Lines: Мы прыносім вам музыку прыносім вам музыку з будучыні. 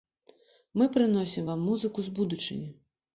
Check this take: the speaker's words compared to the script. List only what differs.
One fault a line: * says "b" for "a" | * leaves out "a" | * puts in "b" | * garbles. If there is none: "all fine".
* leaves out "прыносім вам музыку"